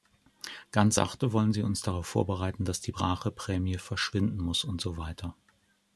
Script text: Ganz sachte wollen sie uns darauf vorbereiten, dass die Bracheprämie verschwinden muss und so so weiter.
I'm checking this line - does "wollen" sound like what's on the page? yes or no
yes